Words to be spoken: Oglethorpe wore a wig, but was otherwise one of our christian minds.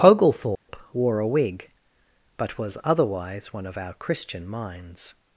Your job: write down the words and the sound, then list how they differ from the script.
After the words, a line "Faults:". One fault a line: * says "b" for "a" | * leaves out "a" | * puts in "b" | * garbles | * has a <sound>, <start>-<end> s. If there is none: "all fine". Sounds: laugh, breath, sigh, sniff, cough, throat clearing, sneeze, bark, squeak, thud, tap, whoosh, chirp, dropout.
Oglethorpe wore a wig, but was otherwise one of our christian minds.
Faults:
* has a dropout, 0.5-0.7 s